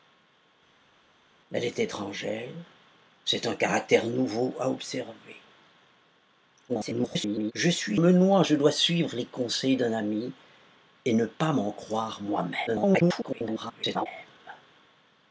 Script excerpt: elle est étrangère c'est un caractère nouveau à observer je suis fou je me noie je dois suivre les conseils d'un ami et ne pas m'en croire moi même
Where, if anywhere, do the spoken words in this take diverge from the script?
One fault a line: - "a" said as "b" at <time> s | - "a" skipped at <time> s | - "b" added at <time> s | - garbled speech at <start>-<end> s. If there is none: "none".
- garbled speech at 6.7-7.5 s
- "fou je" skipped at 8.0 s
- garbled speech at 12.7-14.1 s